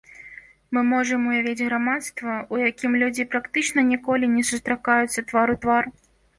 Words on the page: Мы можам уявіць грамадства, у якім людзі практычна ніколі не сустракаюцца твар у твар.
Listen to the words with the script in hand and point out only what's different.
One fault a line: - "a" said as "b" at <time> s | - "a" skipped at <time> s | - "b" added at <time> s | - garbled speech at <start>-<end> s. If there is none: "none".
none